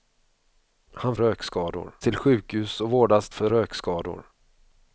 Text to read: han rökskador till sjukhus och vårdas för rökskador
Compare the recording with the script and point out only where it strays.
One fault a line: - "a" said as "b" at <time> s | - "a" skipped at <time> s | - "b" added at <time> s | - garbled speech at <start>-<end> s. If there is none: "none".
none